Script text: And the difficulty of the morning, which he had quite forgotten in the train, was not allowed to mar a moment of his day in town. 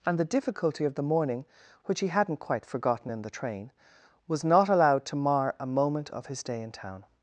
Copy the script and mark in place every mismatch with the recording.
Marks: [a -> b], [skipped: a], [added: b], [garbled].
And the difficulty of the morning, which he [had -> hadn't] quite forgotten in the train, was not allowed to mar a moment of his day in town.